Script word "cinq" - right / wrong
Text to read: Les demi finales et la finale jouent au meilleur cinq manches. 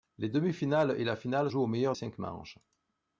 right